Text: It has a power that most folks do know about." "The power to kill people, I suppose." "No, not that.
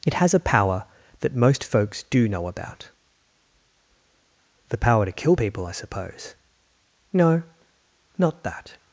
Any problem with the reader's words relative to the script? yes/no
no